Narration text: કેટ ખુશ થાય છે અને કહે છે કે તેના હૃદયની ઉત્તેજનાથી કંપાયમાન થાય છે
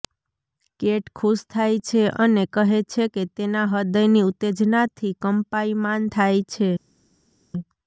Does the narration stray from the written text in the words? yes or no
no